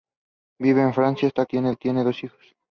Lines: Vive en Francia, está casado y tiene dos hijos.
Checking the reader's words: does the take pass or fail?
fail